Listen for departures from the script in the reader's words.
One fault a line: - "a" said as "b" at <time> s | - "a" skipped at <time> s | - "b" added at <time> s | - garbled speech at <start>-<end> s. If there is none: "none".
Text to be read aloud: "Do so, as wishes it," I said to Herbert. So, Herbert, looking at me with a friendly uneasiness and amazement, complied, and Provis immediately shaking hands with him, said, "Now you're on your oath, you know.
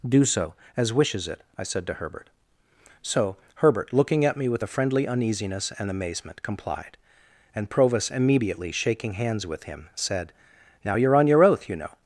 none